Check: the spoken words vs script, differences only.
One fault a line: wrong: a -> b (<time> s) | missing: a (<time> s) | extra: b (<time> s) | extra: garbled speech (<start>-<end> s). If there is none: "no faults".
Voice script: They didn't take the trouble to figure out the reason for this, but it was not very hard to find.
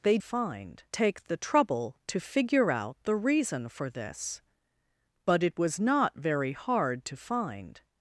wrong: didn't -> find (0.2 s)